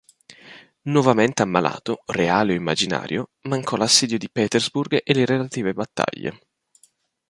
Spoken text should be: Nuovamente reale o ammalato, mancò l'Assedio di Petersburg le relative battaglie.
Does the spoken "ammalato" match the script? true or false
false